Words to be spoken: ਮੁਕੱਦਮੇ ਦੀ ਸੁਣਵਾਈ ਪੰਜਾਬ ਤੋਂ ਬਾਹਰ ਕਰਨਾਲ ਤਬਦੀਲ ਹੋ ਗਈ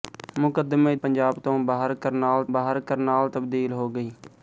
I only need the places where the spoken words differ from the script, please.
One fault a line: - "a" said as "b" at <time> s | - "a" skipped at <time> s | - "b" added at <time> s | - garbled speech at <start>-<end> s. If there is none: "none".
- "ਦੀ ਸੁਣਵਾਈ ਪੰਜਾਬ ਤੋਂ" said as "ਪੰਜਾਬ ਤੋਂ ਬਾਹਰ ਕਰਨਾਲ" at 1.0 s